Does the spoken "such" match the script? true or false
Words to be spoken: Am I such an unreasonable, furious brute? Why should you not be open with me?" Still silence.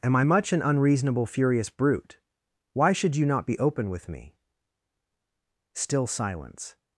false